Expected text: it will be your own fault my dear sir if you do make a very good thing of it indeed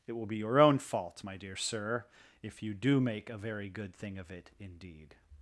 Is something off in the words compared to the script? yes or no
no